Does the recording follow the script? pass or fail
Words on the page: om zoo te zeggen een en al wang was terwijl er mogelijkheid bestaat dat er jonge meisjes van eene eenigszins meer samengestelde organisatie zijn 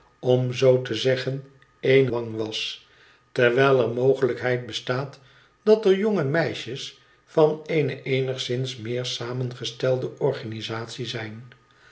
fail